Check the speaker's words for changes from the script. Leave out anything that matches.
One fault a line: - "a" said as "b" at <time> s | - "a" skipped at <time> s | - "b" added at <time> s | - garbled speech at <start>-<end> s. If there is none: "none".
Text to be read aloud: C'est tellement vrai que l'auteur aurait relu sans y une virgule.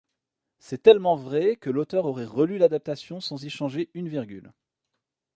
- "l'adaptation" added at 2.6 s
- "changer" added at 3.5 s